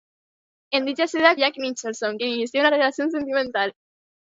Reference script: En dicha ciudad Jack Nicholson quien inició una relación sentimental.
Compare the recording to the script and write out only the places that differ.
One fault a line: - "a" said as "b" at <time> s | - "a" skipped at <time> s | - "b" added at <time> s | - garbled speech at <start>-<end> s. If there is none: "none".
none